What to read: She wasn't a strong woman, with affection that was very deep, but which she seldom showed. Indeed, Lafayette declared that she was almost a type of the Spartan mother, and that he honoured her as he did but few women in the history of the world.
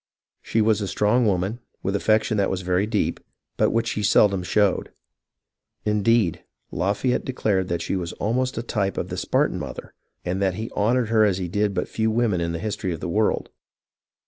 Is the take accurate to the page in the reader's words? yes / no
no